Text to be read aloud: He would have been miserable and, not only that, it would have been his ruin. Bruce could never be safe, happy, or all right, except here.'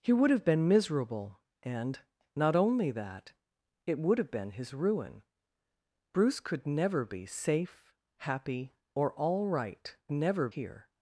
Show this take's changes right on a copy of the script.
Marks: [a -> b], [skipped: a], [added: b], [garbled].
He would have been miserable and, not only that, it would have been his ruin. Bruce could never be safe, happy, or all right, [except -> never] here.'